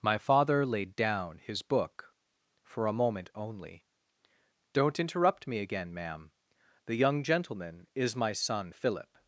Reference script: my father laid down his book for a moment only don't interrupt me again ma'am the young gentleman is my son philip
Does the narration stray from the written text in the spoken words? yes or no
no